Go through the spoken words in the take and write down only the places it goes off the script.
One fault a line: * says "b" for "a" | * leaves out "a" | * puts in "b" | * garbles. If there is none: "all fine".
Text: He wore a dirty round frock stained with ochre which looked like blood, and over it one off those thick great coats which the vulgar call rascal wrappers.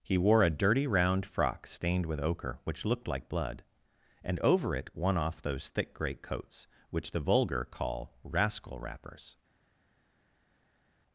all fine